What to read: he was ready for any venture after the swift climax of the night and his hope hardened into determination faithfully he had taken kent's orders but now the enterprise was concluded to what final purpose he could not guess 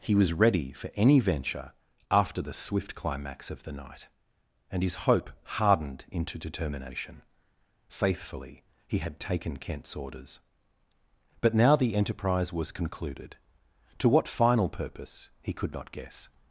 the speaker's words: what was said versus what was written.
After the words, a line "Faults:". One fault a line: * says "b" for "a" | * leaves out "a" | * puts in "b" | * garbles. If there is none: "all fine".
he was ready for any venture after the swift climax of the night and his hope hardened into determination faithfully he had taken kent's orders but now the enterprise was concluded to what final purpose he could not guess
Faults:
all fine